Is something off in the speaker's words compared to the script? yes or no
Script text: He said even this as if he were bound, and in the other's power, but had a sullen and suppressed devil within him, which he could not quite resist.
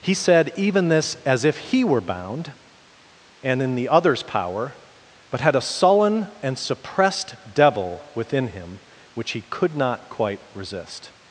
no